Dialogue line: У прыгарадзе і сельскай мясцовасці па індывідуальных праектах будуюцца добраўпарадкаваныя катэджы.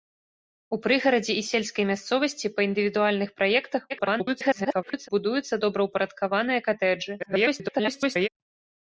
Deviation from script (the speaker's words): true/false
true